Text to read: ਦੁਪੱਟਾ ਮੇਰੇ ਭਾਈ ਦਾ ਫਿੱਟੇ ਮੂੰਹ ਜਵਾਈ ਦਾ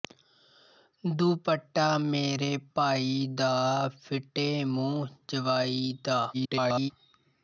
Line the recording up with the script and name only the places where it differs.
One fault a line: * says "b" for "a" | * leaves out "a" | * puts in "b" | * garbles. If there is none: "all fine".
* garbles